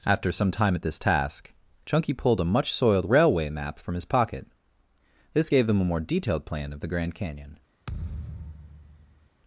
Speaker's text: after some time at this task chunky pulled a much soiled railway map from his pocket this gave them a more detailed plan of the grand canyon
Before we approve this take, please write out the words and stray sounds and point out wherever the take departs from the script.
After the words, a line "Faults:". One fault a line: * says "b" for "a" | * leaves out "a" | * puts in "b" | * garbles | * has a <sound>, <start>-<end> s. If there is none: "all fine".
after some time at this task chunky pulled a much soiled railway map from his pocket this gave them a more detailed plan of the grand canyon
Faults:
* has a thud, 7.9-9.3 s